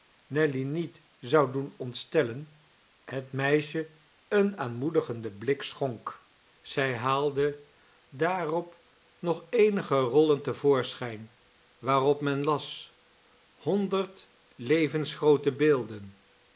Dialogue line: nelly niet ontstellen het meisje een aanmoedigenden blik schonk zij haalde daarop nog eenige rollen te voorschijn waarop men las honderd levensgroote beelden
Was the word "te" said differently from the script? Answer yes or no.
no